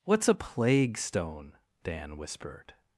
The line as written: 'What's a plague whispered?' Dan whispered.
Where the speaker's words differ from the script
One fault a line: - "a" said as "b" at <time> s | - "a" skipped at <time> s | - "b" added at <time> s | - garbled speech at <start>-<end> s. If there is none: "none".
- "whispered" said as "stone" at 1.0 s